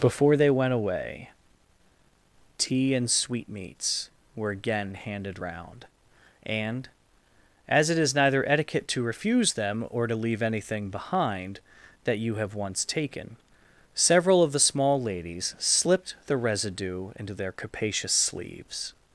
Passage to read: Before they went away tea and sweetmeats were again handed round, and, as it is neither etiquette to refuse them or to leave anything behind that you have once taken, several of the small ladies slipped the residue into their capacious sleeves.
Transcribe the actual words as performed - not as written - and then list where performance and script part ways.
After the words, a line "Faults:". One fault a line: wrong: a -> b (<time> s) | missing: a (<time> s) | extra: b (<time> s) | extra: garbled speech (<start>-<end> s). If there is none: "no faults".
Before they went away tea and sweetmeats were again handed round, and, as it is neither etiquette to refuse them or to leave anything behind that you have once taken, several of the small ladies slipped the residue into their capacious sleeves.
Faults:
no faults